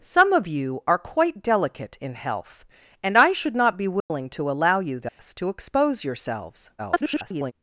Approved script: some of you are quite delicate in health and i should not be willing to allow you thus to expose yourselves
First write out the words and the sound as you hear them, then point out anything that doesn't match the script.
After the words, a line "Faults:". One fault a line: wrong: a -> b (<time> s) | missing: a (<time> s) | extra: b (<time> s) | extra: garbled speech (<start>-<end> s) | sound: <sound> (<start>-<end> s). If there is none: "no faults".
some of you are quite delicate in health and i should not be willing to allow you thus to expose yourselves [garbled]
Faults:
sound: dropout (4.0-4.1 s)
sound: dropout (5.1-5.2 s)
extra: garbled speech (6.8-7.5 s)